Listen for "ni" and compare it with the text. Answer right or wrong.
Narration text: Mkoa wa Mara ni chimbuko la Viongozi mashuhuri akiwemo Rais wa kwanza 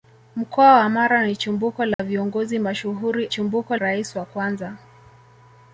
right